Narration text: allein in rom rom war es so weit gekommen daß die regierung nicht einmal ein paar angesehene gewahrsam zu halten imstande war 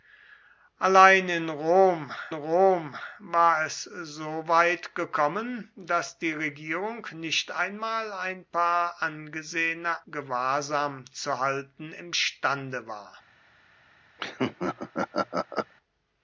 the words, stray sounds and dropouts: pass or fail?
fail